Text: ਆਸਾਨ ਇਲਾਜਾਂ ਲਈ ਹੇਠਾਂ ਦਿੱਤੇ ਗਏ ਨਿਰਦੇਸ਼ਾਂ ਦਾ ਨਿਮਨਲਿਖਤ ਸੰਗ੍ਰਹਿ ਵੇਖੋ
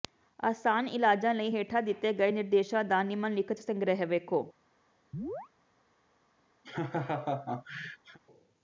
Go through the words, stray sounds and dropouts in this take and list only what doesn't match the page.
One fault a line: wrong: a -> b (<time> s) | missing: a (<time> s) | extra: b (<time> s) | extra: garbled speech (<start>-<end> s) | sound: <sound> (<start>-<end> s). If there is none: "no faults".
sound: chirp (5.1-5.5 s)
sound: laugh (6.6-8.2 s)